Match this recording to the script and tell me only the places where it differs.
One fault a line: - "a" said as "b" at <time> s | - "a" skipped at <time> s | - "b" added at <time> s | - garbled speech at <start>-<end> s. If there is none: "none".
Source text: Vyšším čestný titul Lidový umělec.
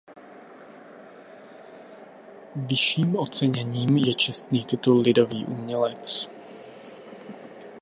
- "oceněním je" added at 3.1 s